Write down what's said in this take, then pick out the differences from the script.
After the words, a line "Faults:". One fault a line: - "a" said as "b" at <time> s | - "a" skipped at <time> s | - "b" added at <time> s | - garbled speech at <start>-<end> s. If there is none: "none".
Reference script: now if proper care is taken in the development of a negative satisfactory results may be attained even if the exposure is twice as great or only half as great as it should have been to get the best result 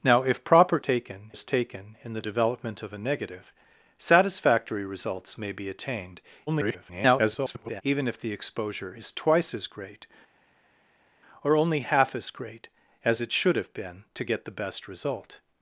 now if proper taken is taken in the development of a negative satisfactory results may be attained [garbled] even if the exposure is twice as great or only half as great as it should have been to get the best result
Faults:
- "care" said as "taken" at 0.8 s
- garbled speech at 6.5-7.8 s